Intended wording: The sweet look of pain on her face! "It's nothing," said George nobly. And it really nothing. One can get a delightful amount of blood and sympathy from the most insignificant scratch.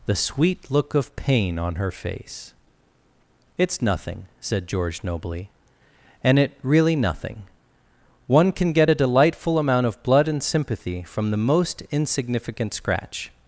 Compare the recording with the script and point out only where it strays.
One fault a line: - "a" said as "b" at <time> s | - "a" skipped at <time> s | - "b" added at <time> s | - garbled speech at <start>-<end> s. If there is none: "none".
none